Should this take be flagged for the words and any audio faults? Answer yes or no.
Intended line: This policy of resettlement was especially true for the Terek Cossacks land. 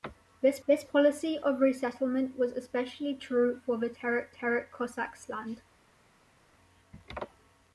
yes